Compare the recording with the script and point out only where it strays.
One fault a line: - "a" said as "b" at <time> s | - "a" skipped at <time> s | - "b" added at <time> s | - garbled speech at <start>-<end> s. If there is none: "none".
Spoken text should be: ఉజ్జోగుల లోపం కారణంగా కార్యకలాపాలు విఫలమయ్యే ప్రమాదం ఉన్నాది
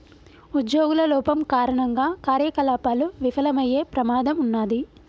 none